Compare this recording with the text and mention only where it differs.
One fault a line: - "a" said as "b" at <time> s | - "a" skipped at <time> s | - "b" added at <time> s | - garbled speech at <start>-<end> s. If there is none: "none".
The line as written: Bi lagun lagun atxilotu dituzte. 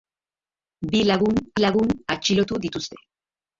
none